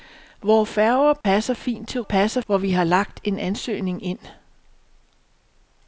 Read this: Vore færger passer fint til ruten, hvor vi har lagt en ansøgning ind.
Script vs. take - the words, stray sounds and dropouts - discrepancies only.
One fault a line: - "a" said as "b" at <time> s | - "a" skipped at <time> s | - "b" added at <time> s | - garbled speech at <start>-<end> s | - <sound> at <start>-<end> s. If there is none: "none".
- dropout at 1.2-1.2 s
- "ruten" said as "passer" at 2.0 s